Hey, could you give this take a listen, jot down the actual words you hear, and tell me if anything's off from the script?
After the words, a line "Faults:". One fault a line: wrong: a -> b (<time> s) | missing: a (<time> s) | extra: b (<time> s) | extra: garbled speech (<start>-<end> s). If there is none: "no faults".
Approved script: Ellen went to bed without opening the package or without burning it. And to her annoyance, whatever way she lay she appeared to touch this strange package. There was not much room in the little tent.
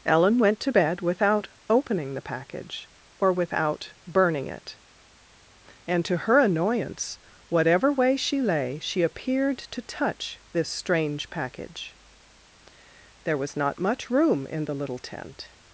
Ellen went to bed without opening the package or without burning it. And to her annoyance, whatever way she lay she appeared to touch this strange package. There was not much room in the little tent.
Faults:
no faults